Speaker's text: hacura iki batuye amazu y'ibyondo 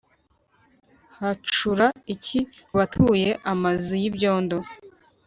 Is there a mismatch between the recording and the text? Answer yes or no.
no